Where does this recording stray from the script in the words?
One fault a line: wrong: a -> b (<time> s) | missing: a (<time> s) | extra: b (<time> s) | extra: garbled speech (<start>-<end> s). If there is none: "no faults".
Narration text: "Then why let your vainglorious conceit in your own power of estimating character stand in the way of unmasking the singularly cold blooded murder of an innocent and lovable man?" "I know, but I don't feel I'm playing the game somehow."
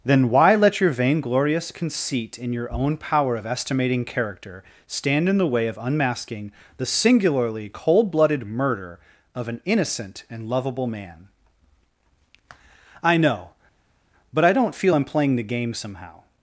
no faults